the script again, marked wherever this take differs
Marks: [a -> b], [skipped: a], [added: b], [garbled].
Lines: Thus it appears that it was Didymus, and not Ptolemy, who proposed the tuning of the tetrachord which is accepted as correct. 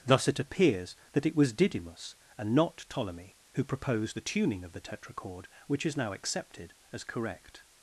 Thus it appears that it was Didymus, and not Ptolemy, who proposed the tuning of the tetrachord which is [added: now] accepted as correct.